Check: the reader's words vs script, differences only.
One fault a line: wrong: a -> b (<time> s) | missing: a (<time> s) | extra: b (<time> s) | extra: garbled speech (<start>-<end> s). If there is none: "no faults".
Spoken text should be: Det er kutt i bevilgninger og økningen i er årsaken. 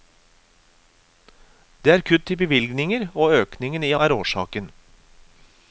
no faults